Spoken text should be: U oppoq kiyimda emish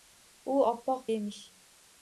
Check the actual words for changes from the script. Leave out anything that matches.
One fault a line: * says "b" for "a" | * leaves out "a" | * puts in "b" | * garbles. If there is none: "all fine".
* leaves out "kiyimda"